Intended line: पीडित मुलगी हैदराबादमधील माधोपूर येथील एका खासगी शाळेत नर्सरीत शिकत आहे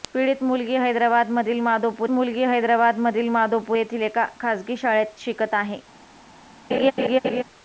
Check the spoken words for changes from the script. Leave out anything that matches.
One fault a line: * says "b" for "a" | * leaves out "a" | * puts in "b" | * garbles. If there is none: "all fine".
* puts in "मुलगी हैदराबादमधील माधोपूर"
* leaves out "नर्सरीत"